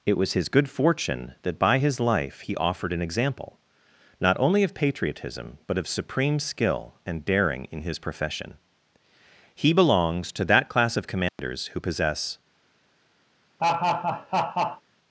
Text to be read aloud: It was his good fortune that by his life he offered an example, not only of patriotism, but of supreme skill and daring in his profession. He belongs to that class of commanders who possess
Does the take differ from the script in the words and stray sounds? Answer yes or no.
yes